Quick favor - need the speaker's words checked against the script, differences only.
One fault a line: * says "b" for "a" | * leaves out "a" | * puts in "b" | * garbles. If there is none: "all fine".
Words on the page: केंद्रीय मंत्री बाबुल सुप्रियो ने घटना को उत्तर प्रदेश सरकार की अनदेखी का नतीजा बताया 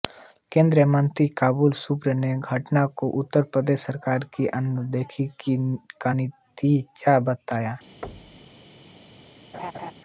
all fine